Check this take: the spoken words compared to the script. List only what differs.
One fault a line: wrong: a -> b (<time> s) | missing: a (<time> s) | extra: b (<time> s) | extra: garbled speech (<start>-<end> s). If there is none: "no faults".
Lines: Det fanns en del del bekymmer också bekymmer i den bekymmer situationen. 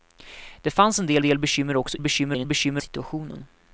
no faults